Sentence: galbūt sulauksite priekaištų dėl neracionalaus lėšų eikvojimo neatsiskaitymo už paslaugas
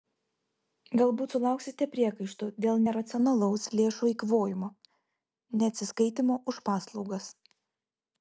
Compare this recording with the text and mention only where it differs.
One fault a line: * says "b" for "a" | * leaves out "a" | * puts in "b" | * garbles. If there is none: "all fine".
all fine